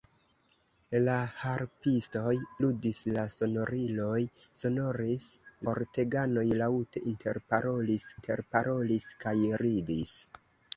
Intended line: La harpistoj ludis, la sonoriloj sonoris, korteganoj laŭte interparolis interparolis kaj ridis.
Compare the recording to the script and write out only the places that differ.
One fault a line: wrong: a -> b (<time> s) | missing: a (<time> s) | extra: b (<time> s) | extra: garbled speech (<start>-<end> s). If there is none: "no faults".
no faults